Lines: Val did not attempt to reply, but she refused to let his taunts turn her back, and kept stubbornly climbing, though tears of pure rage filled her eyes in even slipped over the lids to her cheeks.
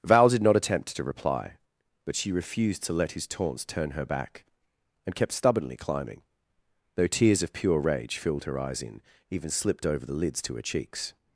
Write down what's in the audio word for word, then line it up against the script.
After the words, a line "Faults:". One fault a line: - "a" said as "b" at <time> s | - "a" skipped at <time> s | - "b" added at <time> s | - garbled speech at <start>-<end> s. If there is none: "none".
Val did not attempt to reply, but she refused to let his taunts turn her back, and kept stubbornly climbing, though tears of pure rage filled her eyes in even slipped over the lids to her cheeks.
Faults:
none